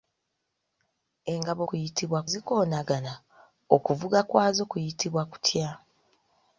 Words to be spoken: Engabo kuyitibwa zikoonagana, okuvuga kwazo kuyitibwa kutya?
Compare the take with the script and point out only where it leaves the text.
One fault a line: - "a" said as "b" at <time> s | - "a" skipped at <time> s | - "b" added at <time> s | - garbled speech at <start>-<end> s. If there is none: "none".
none